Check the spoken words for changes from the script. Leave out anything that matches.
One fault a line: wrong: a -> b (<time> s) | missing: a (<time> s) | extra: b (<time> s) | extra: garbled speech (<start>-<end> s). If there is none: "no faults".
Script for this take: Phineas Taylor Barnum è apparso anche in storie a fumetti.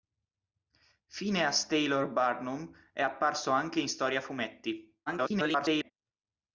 extra: garbled speech (5.1-5.9 s)